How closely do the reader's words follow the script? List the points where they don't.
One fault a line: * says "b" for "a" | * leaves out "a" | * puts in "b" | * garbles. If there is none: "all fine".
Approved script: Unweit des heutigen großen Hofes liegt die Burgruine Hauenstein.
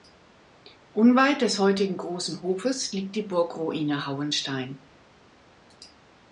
all fine